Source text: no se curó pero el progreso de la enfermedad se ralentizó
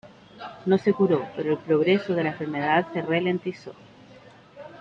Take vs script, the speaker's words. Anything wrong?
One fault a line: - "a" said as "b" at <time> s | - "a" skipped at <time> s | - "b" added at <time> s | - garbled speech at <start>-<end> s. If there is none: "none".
none